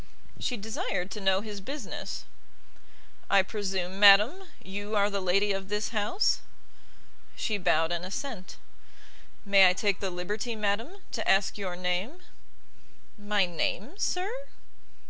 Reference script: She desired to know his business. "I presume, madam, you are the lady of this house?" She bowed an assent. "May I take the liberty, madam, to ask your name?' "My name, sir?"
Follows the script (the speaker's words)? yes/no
yes